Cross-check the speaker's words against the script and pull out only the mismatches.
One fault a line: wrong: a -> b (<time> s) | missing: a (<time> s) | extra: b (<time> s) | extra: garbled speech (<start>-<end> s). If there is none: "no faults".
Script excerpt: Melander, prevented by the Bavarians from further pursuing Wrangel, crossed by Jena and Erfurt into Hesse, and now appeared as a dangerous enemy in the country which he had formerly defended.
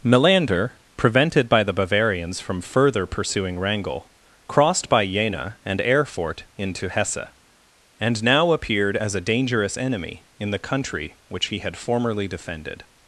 no faults